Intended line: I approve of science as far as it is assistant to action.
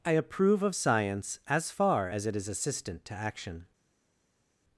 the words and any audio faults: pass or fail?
pass